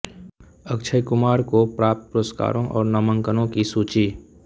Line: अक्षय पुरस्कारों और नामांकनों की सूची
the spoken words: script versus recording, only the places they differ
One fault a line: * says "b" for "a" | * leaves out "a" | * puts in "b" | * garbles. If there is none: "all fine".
* puts in "कुमार को प्राप्त"